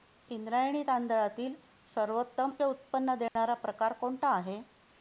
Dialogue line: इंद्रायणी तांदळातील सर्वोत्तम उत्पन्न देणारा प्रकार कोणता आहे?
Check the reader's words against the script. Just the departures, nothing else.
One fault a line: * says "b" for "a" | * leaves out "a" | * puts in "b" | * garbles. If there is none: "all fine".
all fine